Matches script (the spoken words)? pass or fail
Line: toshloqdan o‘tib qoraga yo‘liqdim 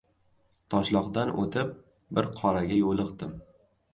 fail